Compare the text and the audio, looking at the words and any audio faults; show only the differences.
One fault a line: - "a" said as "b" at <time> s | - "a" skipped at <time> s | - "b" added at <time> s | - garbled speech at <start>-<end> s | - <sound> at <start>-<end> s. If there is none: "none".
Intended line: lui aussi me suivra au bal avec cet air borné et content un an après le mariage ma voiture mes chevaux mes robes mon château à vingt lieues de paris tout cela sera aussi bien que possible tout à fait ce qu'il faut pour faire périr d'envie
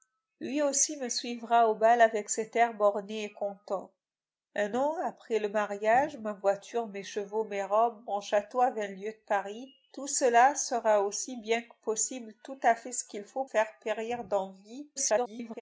- "pour" skipped at 13.4 s
- garbled speech at 15.0-15.6 s